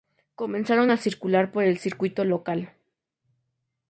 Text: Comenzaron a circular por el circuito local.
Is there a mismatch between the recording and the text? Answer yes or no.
no